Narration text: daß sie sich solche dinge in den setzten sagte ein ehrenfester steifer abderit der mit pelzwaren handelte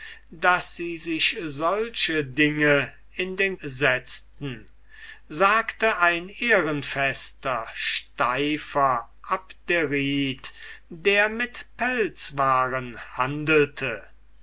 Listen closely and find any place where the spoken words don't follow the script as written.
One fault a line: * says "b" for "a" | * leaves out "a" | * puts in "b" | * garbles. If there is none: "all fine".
all fine